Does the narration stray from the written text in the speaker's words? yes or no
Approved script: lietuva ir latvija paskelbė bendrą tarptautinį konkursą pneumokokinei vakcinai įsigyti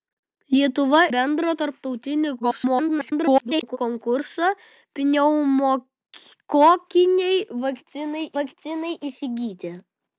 yes